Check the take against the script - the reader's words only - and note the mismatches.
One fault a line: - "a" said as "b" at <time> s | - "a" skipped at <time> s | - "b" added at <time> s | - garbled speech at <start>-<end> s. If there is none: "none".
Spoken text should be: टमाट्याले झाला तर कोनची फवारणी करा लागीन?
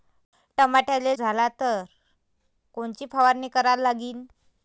none